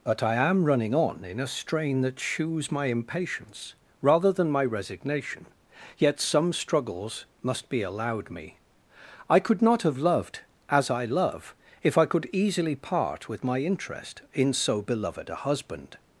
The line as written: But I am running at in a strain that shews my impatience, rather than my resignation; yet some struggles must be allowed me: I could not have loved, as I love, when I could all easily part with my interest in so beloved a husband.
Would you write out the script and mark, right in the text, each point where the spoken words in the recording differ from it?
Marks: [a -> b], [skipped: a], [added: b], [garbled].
But I am running [at -> on] in a strain that shews my impatience, rather than my resignation; yet some struggles must be allowed me: I could not have loved, as I love, [when -> if] I could [skipped: all] easily part with my interest in so beloved a husband.